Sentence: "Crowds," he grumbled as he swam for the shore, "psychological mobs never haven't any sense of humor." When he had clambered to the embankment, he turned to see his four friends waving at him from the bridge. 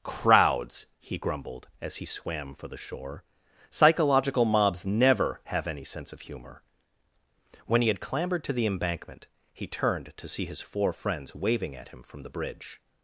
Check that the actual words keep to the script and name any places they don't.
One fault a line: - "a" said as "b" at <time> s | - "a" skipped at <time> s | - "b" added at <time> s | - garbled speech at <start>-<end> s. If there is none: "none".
- "haven't" said as "have" at 5.5 s